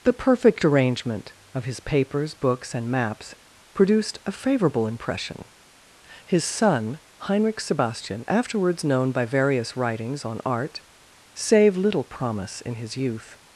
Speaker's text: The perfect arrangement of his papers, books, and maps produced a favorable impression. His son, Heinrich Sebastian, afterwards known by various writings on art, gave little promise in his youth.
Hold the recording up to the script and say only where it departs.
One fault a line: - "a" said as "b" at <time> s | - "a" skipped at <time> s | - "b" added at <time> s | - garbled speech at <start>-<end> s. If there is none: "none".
- "gave" said as "save" at 11.3 s